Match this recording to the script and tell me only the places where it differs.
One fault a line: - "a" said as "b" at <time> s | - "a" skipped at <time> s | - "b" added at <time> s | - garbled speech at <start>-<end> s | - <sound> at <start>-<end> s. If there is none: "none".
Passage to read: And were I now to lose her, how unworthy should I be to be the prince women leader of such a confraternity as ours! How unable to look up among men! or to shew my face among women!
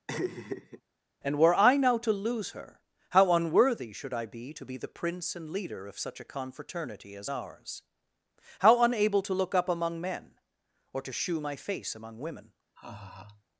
- laugh at 0.1-0.8 s
- "women" said as "and" at 5.4 s
- laugh at 12.8-13.4 s